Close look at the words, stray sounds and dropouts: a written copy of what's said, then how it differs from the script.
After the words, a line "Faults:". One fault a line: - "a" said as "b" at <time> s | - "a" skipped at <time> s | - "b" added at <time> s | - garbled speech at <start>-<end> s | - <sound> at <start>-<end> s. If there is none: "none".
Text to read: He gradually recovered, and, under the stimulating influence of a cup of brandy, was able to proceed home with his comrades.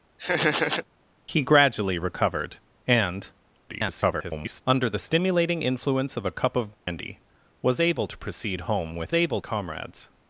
He gradually recovered, and, [garbled] under the stimulating influence of a cup of brandy, was able to proceed home with able comrades.
Faults:
- laugh at 0.2-0.8 s
- garbled speech at 3.7-4.6 s
- dropout at 6.7-6.9 s
- "his" said as "able" at 9.1 s